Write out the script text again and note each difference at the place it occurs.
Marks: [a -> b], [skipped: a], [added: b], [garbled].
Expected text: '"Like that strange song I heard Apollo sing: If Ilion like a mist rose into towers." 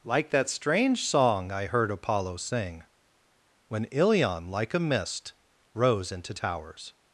'"Like that strange song I heard Apollo sing: [If -> When] Ilion like a mist rose into towers."